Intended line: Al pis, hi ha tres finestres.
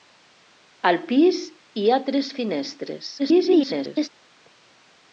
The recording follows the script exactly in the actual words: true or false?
false